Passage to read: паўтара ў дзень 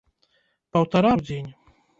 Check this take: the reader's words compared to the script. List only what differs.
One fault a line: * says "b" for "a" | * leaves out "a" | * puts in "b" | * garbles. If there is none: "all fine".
all fine